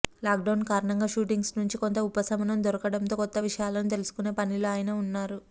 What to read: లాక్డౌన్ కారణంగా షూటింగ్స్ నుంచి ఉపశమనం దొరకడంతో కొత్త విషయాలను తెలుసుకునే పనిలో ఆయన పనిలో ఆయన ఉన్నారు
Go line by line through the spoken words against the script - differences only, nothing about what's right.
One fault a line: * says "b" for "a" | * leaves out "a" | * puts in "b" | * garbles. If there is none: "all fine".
* puts in "కొంత"
* leaves out "పనిలో ఆయన"